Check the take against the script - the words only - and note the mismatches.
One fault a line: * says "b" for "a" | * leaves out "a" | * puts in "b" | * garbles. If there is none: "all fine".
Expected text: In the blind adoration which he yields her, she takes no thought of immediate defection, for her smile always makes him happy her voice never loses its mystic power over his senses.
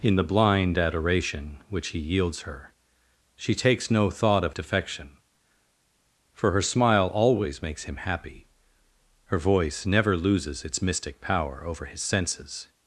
* leaves out "immediate"